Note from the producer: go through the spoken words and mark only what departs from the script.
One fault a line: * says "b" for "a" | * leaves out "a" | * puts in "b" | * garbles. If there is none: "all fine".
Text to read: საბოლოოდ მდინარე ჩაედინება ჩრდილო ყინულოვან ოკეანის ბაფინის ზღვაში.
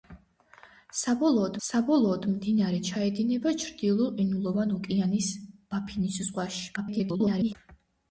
* puts in "საბოლოოდ"
* garbles